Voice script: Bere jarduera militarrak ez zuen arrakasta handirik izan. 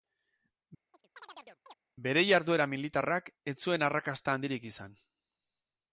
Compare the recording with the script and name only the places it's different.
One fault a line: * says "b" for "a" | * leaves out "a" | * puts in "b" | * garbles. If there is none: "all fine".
all fine